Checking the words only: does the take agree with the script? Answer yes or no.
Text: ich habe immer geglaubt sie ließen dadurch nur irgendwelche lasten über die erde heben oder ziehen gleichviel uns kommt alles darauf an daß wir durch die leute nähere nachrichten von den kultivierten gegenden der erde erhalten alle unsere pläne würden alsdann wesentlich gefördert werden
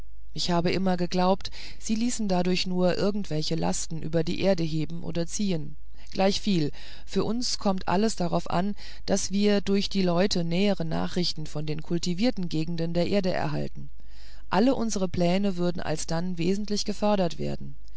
no